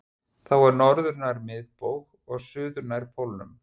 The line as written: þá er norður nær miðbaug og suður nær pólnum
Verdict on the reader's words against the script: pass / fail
pass